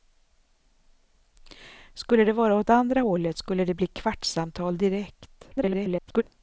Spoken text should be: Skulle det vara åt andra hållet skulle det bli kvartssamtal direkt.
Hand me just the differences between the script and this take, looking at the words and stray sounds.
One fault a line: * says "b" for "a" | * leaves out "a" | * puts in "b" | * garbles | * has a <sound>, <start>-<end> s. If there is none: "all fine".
* garbles